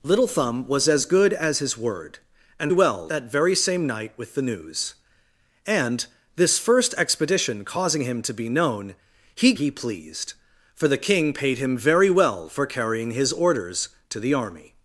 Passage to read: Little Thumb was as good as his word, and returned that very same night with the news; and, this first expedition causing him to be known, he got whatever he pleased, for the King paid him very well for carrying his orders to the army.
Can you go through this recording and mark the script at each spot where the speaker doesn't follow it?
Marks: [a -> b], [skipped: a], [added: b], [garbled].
Little Thumb was as good as his word, and [returned -> well] that very same night with the news; and, this first expedition causing him to be known, he [skipped: got whatever] he pleased, for the King paid him very well for carrying his orders to the army.